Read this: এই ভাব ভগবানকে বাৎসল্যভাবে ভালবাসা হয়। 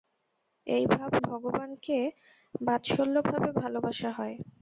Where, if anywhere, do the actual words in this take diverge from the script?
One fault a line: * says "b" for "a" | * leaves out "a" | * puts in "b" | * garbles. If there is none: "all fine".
all fine